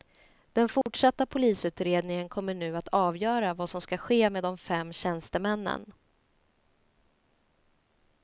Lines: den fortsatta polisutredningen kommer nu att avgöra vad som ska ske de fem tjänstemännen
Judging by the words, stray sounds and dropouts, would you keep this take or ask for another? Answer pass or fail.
fail